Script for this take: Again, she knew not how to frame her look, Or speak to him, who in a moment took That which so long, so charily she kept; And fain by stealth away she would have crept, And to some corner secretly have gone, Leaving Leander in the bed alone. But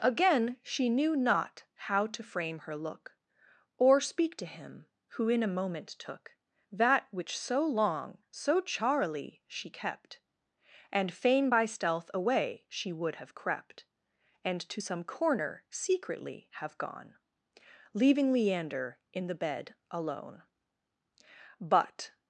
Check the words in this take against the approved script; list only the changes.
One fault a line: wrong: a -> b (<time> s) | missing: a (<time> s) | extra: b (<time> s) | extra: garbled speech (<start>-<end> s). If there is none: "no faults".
no faults